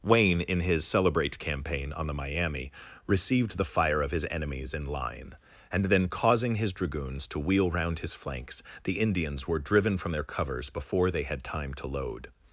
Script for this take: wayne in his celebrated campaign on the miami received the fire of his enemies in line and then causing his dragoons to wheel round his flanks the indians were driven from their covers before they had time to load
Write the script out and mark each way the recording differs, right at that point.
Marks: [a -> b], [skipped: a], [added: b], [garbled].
wayne in his [celebrated -> celebrate] campaign on the miami received the fire of his enemies in line and then causing his dragoons to wheel round his flanks the indians were driven from their covers before they had time to load